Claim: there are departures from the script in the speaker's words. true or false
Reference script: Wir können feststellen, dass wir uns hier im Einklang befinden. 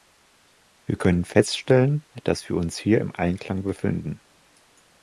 false